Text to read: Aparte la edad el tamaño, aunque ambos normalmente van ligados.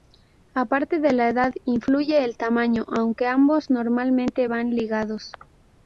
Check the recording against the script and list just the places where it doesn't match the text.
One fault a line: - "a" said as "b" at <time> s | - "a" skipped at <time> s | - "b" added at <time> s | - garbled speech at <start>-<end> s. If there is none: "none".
- "de" added at 1.0 s
- "influye" added at 1.6 s